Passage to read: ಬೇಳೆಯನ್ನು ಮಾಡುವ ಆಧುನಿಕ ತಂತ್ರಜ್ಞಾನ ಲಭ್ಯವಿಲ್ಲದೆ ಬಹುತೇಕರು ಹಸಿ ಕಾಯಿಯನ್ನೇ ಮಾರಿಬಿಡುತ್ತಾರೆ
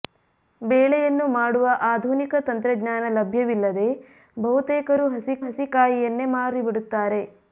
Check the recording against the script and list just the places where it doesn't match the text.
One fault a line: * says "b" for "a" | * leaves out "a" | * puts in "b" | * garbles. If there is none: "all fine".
* puts in "ಹಸಿ"